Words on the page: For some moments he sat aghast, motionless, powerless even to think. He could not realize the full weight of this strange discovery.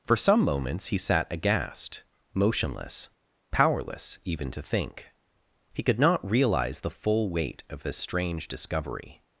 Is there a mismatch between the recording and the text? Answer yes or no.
no